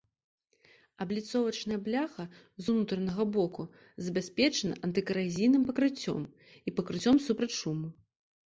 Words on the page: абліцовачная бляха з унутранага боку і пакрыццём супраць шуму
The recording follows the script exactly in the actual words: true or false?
false